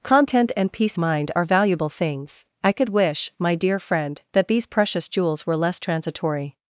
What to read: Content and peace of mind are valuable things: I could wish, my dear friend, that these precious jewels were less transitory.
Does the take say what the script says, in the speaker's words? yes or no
no